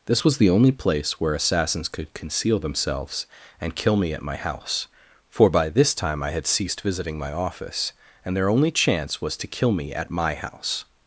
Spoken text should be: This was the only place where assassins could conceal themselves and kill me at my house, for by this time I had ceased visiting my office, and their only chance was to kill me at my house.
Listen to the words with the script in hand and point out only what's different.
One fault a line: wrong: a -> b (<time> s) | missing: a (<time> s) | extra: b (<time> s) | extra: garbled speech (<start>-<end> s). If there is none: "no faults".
no faults